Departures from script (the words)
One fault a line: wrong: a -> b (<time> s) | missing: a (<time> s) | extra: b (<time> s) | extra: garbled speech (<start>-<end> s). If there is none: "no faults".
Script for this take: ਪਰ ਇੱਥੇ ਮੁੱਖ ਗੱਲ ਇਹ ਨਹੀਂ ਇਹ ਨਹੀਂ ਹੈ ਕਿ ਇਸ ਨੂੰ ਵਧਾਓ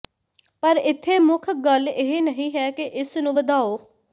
missing: ਇਹ ਨਹੀਂ (2.5 s)